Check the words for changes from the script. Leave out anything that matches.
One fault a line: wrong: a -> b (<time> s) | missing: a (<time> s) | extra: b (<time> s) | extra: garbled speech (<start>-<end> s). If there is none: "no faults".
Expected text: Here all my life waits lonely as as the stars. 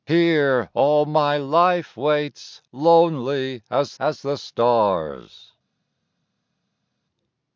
no faults